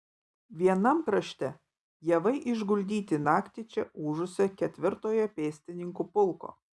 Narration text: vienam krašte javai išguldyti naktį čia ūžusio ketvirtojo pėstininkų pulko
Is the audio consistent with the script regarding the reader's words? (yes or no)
yes